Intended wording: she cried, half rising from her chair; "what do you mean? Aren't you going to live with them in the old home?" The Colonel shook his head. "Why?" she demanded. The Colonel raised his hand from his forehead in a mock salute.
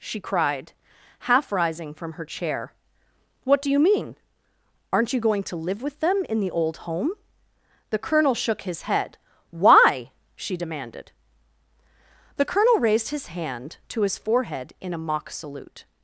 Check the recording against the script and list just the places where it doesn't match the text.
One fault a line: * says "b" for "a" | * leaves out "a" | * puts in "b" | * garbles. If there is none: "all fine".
* says "to" for "from"